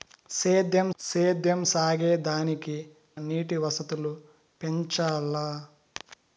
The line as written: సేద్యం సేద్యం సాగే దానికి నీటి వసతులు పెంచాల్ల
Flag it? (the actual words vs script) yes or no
no